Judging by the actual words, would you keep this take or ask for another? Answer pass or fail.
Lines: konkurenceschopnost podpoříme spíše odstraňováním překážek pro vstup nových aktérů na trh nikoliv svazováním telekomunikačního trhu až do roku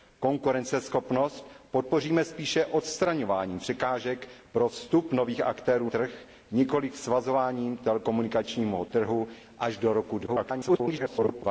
fail